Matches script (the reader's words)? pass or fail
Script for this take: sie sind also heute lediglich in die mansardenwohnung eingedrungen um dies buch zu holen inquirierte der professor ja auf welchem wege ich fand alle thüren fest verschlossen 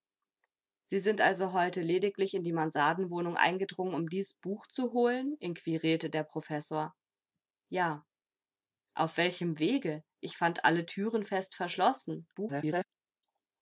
fail